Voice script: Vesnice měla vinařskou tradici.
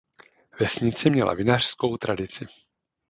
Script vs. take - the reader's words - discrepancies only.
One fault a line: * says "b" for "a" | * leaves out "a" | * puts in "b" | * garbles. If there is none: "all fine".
all fine